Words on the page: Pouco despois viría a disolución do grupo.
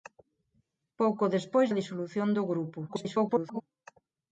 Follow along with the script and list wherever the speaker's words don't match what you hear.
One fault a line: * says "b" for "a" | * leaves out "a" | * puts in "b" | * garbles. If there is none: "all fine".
* leaves out "viría"
* garbles